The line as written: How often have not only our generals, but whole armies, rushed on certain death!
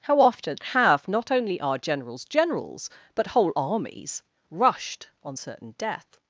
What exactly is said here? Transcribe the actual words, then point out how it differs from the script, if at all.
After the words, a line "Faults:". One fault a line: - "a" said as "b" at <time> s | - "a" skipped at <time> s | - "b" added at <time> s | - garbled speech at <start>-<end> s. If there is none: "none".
How often have not only our generals generals, but whole armies, rushed on certain death!
Faults:
- "generals" added at 2.2 s